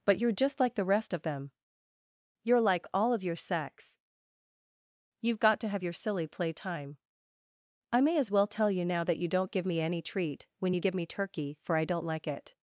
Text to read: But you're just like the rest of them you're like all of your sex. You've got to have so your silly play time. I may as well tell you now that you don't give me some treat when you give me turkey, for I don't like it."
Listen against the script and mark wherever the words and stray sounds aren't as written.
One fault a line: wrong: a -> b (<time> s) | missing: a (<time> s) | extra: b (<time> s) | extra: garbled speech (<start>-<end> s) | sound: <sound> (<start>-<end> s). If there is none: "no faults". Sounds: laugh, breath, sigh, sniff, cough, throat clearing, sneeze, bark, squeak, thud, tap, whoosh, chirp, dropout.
missing: so (5.8 s)
wrong: some -> any (9.8 s)